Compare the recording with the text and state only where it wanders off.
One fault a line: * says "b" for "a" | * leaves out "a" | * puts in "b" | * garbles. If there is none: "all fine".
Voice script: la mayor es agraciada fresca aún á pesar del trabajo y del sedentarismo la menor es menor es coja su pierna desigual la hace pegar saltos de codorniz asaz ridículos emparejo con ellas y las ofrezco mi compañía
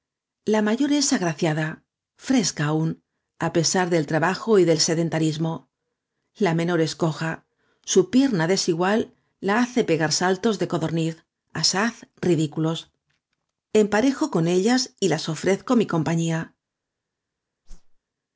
* leaves out "menor es"